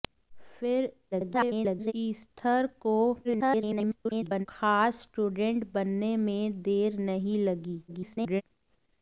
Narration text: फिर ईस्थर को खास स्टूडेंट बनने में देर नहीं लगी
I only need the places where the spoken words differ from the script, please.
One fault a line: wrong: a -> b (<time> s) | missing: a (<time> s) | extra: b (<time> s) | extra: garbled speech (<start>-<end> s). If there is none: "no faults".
extra: garbled speech (1.1-1.9 s)
extra: garbled speech (3.2-4.5 s)
extra: garbled speech (7.9-8.4 s)